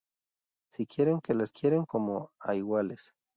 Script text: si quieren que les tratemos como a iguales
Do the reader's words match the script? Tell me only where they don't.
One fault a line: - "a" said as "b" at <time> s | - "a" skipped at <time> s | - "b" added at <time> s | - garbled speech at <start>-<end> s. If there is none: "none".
- "tratemos" said as "quieren" at 1.5 s